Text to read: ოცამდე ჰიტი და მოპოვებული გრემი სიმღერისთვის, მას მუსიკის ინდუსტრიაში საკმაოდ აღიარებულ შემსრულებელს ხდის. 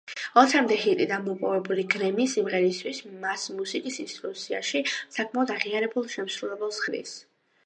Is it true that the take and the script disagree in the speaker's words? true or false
false